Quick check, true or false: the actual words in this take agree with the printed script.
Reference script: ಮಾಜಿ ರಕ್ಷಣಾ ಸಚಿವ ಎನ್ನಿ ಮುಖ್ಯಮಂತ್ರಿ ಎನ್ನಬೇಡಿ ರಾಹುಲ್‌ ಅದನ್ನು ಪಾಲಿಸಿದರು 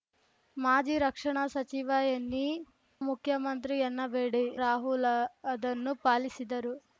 true